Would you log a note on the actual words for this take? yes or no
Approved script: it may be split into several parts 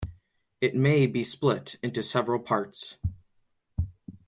no